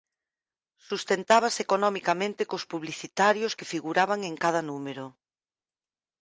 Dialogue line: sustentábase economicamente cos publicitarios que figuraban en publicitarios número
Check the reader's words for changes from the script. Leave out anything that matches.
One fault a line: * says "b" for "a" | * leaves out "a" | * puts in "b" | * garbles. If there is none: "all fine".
* says "cada" for "publicitarios"